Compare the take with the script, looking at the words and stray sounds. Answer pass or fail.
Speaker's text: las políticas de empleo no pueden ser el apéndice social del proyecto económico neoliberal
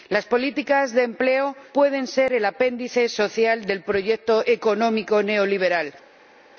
fail